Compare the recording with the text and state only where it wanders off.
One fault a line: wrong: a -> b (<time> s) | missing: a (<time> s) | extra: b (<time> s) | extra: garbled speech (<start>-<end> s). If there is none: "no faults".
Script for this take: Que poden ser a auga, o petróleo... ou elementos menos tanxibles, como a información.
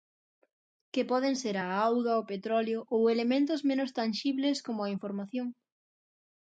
no faults